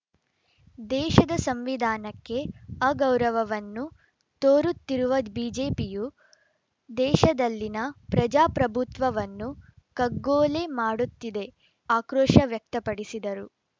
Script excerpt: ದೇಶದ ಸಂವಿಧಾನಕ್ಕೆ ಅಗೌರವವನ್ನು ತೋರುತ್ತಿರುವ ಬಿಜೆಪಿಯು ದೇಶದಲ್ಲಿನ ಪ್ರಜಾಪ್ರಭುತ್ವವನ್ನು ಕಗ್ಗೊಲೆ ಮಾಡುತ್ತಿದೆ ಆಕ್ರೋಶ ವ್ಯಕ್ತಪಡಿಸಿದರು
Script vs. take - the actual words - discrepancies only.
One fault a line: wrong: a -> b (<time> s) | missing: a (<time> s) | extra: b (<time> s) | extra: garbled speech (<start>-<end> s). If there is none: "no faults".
no faults